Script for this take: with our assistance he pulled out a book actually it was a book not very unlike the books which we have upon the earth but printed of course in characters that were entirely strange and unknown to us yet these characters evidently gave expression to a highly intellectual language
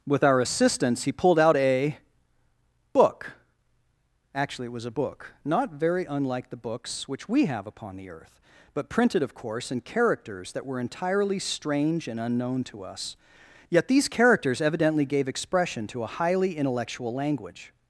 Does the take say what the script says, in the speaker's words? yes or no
yes